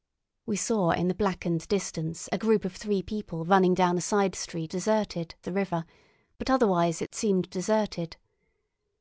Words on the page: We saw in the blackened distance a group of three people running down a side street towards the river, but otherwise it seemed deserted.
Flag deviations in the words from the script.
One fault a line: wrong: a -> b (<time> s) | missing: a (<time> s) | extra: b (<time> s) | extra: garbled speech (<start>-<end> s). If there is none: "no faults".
wrong: towards -> deserted (4.7 s)